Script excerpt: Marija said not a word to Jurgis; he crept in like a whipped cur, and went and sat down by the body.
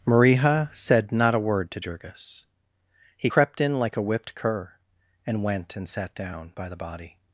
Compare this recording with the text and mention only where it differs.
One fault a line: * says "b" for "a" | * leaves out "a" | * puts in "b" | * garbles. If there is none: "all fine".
all fine